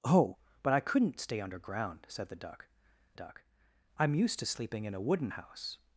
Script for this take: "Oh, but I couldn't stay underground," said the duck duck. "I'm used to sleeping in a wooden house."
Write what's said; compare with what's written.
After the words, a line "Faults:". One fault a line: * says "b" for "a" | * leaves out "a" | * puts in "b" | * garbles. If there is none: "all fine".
"Oh, but I couldn't stay underground," said the duck duck. "I'm used to sleeping in a wooden house."
Faults:
all fine